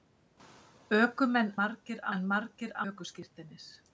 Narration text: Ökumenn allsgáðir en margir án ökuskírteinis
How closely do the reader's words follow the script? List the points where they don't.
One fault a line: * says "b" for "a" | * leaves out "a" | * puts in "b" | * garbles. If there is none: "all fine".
* says "margir" for "allsgáðir"
* leaves out "án"